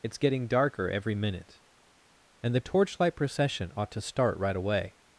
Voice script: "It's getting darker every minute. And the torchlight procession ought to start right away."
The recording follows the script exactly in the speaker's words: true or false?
true